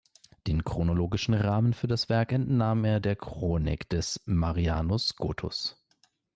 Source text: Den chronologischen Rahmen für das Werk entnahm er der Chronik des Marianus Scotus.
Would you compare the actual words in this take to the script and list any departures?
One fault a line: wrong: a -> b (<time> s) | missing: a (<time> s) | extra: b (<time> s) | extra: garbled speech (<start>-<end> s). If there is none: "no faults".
no faults